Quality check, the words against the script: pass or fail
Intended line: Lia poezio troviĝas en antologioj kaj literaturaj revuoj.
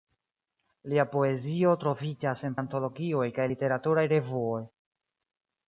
pass